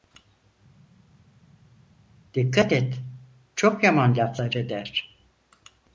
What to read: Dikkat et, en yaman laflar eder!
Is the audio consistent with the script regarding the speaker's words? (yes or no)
no